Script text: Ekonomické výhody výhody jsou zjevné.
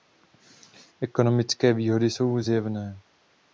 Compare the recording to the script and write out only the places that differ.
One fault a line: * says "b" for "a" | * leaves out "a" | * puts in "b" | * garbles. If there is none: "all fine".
* leaves out "výhody"